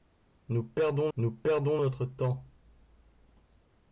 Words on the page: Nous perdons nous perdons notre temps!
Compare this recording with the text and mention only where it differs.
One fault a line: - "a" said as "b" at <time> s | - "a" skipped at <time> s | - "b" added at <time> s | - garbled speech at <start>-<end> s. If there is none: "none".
none